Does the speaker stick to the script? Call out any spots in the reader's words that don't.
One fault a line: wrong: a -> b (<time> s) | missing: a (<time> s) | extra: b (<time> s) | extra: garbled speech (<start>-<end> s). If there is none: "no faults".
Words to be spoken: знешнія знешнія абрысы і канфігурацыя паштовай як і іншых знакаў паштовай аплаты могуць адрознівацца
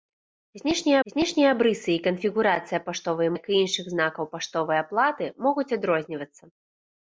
no faults